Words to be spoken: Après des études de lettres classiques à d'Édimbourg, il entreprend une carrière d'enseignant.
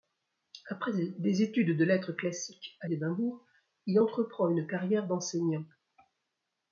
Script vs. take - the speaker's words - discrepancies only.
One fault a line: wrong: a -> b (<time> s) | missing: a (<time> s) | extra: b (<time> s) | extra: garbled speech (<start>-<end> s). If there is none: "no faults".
no faults